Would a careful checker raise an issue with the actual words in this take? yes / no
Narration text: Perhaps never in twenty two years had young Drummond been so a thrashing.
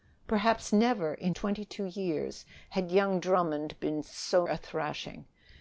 no